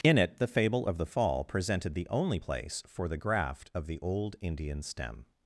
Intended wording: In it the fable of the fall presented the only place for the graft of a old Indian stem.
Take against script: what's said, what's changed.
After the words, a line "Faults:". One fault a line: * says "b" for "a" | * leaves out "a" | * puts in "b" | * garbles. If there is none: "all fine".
In it the fable of the fall presented the only place for the graft of the old Indian stem.
Faults:
* says "the" for "a"